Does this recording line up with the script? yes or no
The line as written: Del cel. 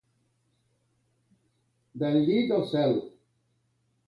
no